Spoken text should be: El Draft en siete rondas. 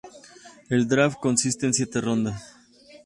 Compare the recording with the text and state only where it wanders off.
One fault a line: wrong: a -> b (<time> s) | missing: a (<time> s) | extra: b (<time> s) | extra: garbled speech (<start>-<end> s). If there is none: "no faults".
extra: consiste (1.2 s)